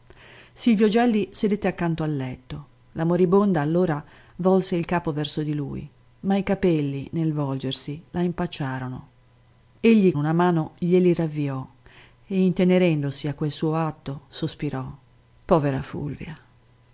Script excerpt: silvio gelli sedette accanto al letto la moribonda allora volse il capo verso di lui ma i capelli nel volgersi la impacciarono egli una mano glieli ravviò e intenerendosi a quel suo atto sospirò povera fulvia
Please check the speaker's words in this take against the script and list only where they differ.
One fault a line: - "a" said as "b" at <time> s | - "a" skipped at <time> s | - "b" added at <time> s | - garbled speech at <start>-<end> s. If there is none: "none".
none